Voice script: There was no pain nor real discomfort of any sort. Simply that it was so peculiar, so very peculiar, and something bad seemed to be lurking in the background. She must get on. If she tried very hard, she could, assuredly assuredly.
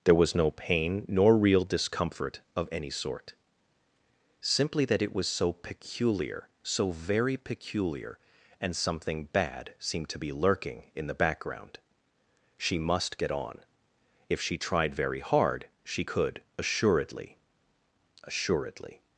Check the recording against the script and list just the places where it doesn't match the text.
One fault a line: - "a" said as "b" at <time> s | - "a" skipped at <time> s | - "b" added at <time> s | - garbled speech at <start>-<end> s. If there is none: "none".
none